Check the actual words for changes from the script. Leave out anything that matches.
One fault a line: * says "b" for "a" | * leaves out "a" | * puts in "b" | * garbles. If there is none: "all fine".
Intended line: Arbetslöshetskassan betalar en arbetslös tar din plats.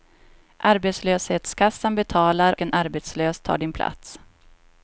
all fine